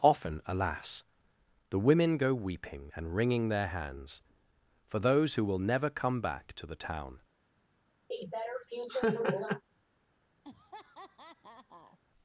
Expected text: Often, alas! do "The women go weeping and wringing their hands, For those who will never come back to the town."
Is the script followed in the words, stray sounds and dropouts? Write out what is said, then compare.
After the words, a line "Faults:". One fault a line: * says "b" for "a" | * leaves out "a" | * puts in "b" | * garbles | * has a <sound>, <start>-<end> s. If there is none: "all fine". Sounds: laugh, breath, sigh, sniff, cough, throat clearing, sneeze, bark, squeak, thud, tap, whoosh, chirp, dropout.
Often, alas! "The women go weeping and wringing their hands, For those who will never come back to the town."
Faults:
* leaves out "do"
* has a laugh, 8.1-9.6 s
* has a laugh, 10.4-12.0 s